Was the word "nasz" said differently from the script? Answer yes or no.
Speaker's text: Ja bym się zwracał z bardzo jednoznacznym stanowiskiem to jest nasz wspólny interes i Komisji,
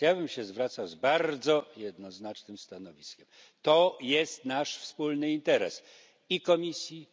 no